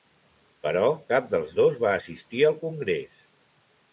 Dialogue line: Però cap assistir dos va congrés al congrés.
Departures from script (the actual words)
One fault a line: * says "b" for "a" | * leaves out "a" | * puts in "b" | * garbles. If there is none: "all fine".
* says "dels" for "assistir"
* says "assistir" for "congrés"